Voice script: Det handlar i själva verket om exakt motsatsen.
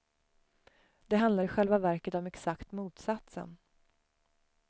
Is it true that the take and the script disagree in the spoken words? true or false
false